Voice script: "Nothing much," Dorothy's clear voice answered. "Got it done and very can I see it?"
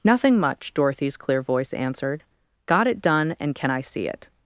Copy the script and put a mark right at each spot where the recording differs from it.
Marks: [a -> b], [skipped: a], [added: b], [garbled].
"Nothing much," Dorothy's clear voice answered. "Got it done and [skipped: very] can I see it?"